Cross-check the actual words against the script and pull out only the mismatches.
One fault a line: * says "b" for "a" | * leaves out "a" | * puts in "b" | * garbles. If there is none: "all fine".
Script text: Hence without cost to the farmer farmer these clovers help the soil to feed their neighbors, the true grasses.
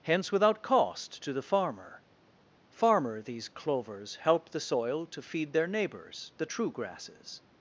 all fine